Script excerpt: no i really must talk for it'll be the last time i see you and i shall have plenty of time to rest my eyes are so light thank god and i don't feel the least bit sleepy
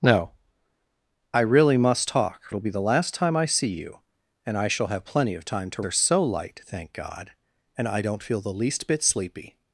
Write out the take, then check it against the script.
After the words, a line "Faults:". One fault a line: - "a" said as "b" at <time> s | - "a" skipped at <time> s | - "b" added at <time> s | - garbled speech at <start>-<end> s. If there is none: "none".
no i really must talk it'll be the last time i see you and i shall have plenty of time to are so light thank god and i don't feel the least bit sleepy
Faults:
- "for" skipped at 2.5 s
- "rest my eyes" skipped at 5.8 s